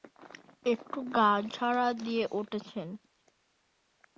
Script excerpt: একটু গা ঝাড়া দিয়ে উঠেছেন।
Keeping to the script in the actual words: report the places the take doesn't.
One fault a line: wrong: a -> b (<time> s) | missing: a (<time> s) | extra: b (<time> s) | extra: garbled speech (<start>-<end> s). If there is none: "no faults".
no faults